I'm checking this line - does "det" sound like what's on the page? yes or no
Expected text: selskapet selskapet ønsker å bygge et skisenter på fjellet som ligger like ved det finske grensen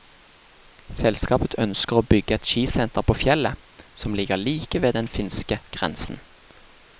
no